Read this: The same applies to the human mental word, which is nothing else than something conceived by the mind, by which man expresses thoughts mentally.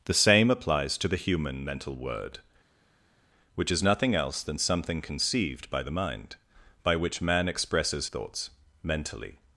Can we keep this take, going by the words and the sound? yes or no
yes